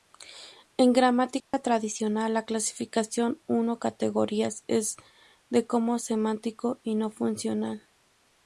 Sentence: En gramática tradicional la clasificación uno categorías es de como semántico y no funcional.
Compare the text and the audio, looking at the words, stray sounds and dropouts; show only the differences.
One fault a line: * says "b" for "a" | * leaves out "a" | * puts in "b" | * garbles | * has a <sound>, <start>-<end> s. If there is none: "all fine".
* has a dropout, 1.4-1.5 s